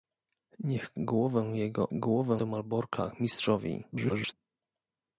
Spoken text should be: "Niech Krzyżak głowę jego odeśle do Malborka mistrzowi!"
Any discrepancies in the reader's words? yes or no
yes